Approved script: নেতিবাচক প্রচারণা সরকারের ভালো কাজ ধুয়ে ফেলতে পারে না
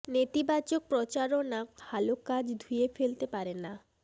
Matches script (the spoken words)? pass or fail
fail